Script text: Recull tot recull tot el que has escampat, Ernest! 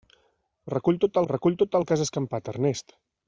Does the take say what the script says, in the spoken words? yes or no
yes